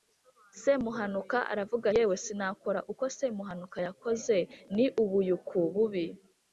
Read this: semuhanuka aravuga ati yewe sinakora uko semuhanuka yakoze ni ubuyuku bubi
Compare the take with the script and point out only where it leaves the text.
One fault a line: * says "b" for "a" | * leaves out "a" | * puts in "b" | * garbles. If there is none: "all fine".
* leaves out "ati"